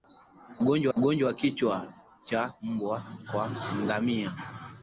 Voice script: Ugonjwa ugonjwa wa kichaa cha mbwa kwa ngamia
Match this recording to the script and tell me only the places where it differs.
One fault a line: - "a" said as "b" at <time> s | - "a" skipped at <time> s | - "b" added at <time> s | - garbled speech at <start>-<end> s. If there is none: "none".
none